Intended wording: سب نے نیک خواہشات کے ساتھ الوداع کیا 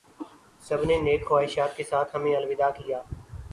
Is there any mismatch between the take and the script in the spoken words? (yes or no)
yes